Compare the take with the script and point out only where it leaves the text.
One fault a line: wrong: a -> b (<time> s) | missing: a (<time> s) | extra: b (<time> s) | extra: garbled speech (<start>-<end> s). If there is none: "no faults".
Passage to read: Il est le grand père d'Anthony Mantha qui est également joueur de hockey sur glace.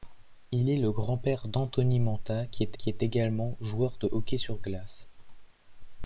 extra: qui est (2.7 s)